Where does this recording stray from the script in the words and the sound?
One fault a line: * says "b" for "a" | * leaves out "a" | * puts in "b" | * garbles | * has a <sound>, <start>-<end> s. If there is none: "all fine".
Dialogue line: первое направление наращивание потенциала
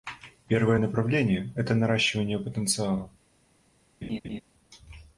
* puts in "это"
* has a laugh, 4.0-4.4 s